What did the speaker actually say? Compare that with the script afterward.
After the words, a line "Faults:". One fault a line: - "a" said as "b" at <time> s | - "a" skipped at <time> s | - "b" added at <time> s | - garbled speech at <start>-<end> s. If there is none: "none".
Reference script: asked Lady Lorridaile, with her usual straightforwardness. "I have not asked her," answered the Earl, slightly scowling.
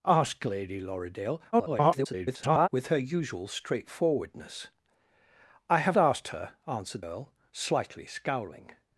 asked Lady Lorridaile, [garbled] with her usual straightforwardness. "I have asked her," answered Earl, slightly scowling.
Faults:
- garbled speech at 1.5-2.7 s
- "not" skipped at 6.0 s
- "the" skipped at 7.0 s